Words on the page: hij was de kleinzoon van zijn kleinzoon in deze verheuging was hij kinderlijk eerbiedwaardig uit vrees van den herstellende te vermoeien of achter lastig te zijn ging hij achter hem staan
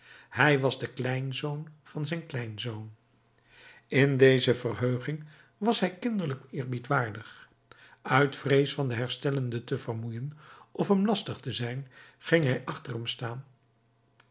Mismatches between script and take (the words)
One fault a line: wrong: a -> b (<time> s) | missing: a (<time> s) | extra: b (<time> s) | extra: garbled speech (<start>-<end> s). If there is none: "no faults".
wrong: achter -> hem (10.9 s)